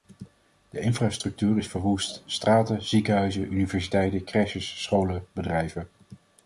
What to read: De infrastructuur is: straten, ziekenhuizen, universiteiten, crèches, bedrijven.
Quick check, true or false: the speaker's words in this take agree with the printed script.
false